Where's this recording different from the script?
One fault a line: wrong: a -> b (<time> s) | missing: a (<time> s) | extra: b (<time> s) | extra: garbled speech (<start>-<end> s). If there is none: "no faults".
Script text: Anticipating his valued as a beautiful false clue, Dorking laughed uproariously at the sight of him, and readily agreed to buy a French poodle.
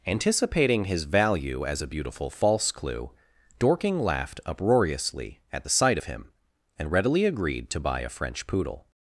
wrong: valued -> value (1.0 s)